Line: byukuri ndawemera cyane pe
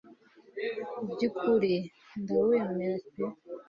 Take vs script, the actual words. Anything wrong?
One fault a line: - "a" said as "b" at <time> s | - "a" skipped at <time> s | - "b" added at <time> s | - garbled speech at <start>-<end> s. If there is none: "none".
- "cyane" skipped at 3.0 s